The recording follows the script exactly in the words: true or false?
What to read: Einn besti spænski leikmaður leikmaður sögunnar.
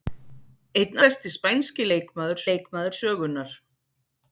true